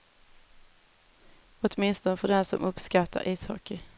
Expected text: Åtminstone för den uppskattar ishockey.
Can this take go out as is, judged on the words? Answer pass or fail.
fail